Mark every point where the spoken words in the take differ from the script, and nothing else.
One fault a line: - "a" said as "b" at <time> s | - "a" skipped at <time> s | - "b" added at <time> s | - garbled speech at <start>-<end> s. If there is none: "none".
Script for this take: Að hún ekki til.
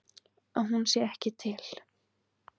- "sé" added at 0.9 s